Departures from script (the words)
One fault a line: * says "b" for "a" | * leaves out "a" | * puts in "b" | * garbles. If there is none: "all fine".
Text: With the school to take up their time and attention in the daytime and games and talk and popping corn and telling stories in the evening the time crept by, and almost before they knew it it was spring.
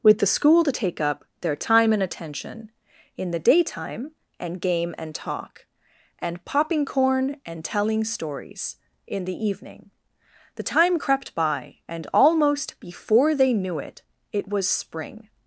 * says "game" for "games"